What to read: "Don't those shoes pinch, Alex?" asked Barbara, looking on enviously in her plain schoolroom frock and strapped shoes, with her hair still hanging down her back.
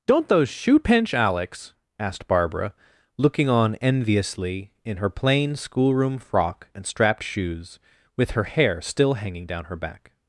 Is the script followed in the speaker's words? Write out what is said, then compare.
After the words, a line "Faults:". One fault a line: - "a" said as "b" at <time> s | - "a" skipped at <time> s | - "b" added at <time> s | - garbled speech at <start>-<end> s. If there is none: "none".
"Don't those shoe pinch, Alex?" asked Barbara, looking on enviously in her plain schoolroom frock and strapped shoes, with her hair still hanging down her back.
Faults:
- "shoes" said as "shoe" at 0.5 s